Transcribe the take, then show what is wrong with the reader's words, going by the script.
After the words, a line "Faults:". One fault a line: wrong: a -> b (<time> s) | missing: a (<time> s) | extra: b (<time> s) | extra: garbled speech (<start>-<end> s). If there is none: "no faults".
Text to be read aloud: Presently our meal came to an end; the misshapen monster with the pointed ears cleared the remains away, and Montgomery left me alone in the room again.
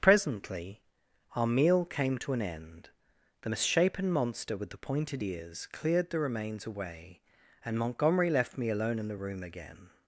Presently our meal came to an end; the misshapen monster with the pointed ears cleared the remains away, and Montgomery left me alone in the room again.
Faults:
no faults